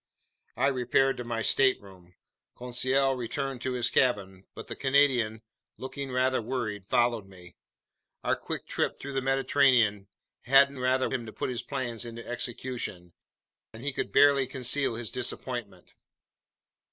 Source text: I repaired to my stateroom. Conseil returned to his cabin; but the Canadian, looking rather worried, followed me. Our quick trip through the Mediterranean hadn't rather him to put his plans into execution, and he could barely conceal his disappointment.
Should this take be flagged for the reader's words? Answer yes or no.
no